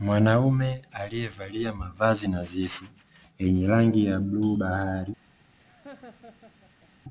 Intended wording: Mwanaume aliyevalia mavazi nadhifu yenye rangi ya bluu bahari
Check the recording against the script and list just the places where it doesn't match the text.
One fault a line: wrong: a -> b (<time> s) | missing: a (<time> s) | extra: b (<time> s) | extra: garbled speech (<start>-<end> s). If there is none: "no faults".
no faults